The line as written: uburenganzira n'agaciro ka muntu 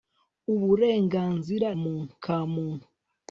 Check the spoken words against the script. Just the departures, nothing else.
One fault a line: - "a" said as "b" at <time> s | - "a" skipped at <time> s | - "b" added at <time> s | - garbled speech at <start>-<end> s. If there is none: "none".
- "n'agaciro" said as "muntu" at 1.8 s